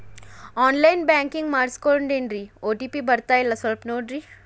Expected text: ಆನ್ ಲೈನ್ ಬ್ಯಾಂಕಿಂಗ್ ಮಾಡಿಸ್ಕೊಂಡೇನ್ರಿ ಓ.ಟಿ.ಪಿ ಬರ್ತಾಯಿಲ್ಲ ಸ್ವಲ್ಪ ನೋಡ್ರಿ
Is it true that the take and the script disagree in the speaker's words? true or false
false